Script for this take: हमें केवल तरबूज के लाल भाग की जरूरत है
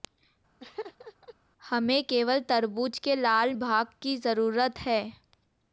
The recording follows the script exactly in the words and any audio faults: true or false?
false